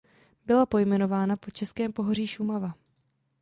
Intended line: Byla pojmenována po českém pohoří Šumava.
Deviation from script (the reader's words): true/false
false